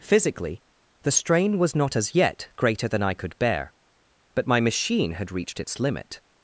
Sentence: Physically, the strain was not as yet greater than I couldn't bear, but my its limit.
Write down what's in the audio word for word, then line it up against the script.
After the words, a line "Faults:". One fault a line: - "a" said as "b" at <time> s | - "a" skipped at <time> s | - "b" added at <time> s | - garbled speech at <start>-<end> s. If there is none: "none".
Physically, the strain was not as yet greater than I could bear, but my machine had reached its limit.
Faults:
- "couldn't" said as "could" at 3.1 s
- "machine had reached" added at 4.6 s